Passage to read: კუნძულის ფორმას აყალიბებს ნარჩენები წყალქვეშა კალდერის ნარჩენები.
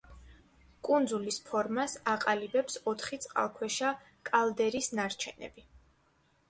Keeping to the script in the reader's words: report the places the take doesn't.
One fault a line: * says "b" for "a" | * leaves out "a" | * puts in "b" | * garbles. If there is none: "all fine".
* says "ოთხი" for "ნარჩენები"